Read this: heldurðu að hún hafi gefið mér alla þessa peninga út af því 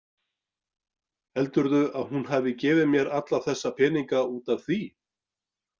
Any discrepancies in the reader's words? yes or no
no